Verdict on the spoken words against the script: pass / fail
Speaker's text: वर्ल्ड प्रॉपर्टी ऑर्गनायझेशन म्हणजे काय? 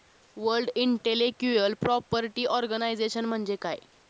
fail